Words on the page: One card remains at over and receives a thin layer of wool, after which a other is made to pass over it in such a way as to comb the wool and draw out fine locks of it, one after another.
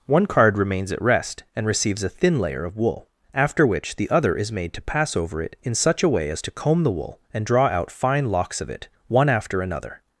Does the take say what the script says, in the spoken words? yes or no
no